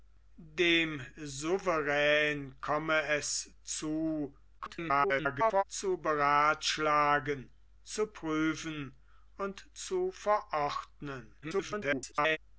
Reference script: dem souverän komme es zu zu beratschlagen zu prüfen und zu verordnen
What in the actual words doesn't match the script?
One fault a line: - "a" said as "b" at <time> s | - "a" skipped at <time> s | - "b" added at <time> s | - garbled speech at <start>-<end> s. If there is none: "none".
- garbled speech at 4.6-5.6 s
- garbled speech at 11.4-12.4 s